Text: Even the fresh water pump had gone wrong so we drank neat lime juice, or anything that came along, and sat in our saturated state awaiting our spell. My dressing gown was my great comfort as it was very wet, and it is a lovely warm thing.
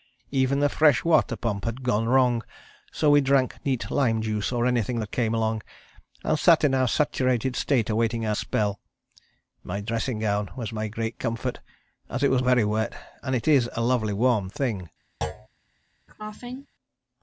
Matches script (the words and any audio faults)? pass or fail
fail